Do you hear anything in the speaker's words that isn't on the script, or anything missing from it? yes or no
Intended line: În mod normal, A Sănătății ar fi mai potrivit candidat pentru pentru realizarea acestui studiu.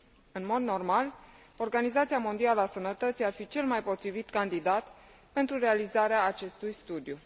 yes